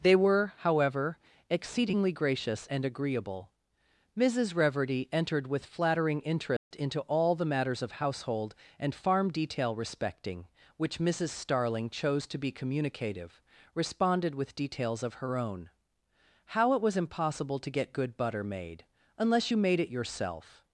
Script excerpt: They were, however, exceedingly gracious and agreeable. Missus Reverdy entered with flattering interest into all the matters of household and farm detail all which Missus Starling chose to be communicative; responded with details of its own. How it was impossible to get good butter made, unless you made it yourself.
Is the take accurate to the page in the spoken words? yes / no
no